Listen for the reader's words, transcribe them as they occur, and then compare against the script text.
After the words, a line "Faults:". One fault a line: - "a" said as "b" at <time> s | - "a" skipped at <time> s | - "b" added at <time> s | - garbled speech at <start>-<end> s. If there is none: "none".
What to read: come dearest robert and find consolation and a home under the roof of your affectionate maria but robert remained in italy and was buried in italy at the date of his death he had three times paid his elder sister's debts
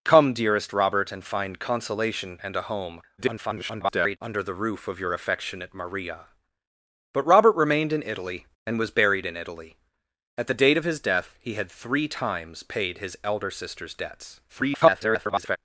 come dearest robert and find consolation and a home [garbled] under the roof of your affectionate maria but robert remained in italy and was buried in italy at the date of his death he had three times paid his elder sister's debts [garbled]
Faults:
- garbled speech at 3.2-4.2 s
- garbled speech at 14.5-15.6 s